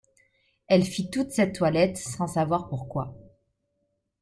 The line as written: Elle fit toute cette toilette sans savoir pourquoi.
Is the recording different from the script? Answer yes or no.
no